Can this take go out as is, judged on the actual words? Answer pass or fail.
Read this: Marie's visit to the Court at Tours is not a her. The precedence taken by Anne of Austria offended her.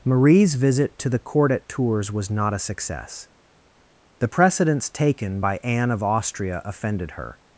fail